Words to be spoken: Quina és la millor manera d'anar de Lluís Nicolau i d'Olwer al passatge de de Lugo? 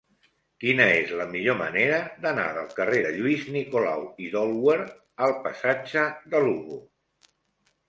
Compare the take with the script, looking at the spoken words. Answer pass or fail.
fail